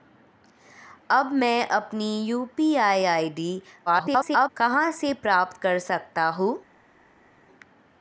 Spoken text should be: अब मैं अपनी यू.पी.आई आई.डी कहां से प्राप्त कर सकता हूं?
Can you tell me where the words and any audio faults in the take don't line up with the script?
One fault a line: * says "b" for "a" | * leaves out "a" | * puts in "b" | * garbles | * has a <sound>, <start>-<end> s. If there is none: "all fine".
* garbles